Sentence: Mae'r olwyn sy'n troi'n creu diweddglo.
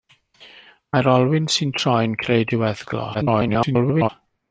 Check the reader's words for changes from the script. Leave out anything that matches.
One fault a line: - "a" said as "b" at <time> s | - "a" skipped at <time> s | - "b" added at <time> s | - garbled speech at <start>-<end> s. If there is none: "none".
- garbled speech at 3.1-4.1 s